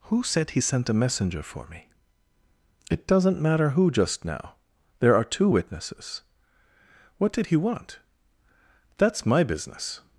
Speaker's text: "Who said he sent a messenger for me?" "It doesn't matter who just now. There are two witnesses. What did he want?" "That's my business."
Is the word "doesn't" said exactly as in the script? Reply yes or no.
yes